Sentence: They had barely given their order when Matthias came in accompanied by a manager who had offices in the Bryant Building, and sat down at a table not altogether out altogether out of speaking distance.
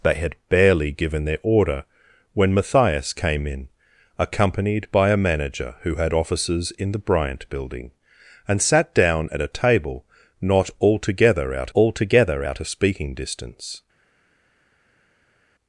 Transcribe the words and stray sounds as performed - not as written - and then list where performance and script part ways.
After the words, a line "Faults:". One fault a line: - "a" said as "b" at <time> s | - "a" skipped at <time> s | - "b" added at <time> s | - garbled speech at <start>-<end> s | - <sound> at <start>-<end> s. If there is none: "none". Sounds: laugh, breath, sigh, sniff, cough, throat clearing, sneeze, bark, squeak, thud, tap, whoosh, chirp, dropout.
They had barely given their order when Matthias came in accompanied by a manager who had offices in the Bryant Building, and sat down at a table not altogether out altogether out of speaking distance.
Faults:
none